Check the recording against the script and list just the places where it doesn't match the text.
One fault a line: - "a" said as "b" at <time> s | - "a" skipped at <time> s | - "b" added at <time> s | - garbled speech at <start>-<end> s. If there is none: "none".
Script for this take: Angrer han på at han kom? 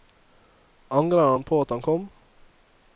none